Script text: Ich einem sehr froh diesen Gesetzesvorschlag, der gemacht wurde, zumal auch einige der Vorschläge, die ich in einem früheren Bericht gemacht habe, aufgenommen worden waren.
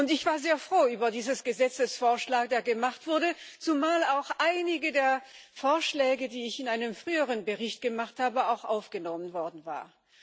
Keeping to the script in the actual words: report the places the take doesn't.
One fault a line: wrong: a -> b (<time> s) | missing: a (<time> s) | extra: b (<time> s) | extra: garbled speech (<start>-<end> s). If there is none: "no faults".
wrong: einem -> war (0.2 s)
extra: über (0.9 s)